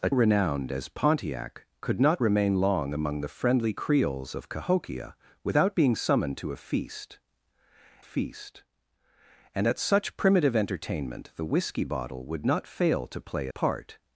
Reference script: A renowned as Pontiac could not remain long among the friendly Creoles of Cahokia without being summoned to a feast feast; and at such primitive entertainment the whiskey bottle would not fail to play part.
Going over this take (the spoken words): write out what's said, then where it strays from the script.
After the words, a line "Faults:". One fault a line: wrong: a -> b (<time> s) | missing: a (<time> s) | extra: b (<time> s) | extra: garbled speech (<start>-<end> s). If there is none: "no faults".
A renowned as Pontiac could not remain long among the friendly Creoles of Cahokia without being summoned to a feast feast; and at such primitive entertainment the whiskey bottle would not fail to play part.
Faults:
no faults